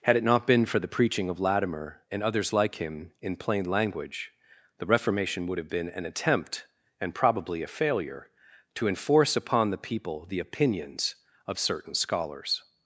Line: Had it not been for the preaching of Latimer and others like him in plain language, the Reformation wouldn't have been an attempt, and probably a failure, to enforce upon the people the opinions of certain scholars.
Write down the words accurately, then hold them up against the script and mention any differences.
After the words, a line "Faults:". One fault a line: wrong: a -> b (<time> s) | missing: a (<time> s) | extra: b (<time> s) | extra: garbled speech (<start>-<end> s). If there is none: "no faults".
Had it not been for the preaching of Latimer and others like him in plain language, the Reformation would have been an attempt, and probably a failure, to enforce upon the people the opinions of certain scholars.
Faults:
wrong: wouldn't -> would (5.5 s)